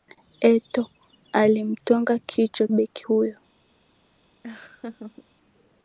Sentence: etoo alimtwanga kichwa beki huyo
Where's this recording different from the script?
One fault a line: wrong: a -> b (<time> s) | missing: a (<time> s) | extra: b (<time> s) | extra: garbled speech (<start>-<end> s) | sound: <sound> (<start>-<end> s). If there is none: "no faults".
sound: laugh (4.4-5.3 s)